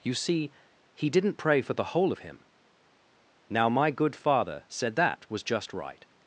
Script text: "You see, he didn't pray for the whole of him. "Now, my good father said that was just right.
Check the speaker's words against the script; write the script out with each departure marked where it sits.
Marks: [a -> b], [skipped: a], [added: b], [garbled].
"You see, he didn't pray for the whole of him. "Now, my good father said that was just right.